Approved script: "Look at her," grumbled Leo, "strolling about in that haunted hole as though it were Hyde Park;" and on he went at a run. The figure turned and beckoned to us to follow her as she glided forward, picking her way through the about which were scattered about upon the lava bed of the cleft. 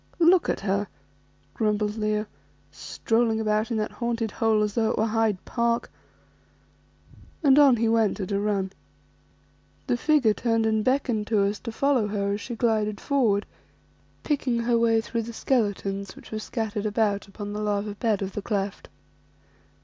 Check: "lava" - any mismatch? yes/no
no